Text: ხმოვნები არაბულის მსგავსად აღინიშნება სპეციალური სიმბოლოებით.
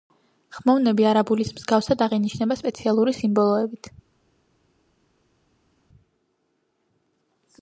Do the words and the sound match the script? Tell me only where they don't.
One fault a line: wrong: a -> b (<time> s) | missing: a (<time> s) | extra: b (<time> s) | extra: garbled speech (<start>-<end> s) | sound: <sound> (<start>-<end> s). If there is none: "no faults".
no faults